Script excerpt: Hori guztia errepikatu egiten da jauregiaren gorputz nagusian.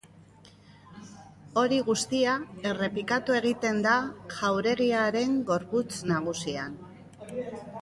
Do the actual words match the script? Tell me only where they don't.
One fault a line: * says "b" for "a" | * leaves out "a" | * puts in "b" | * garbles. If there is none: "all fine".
all fine